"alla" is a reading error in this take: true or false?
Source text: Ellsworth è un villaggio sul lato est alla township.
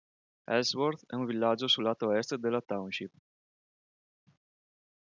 true